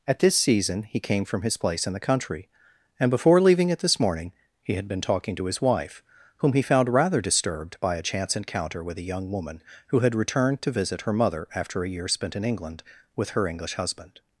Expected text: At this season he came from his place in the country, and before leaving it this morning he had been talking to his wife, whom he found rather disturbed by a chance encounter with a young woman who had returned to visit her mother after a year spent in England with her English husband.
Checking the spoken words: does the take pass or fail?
pass